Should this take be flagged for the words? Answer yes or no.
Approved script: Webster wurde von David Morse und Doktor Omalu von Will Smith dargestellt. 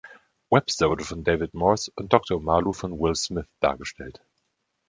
no